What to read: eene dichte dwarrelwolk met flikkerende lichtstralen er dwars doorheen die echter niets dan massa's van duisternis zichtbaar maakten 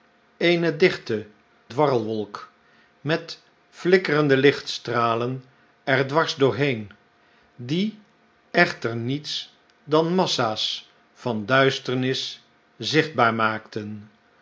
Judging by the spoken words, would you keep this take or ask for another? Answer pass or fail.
pass